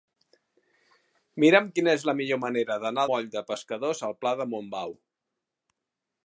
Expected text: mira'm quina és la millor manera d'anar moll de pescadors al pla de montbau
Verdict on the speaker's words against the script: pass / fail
pass